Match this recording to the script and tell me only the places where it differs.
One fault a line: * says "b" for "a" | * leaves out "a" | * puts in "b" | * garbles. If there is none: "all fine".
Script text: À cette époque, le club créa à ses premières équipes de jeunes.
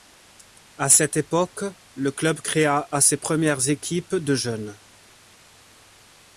all fine